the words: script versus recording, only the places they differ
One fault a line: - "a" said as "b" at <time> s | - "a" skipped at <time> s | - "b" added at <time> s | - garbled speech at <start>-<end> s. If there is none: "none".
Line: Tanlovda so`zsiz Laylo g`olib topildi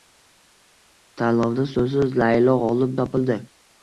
none